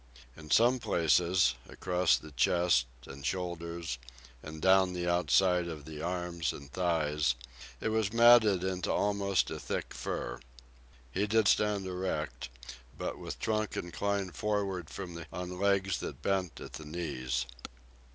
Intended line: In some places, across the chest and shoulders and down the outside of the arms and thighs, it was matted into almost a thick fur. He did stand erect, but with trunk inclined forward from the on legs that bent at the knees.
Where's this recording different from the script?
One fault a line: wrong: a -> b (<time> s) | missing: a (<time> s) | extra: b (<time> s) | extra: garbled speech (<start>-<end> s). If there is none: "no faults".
no faults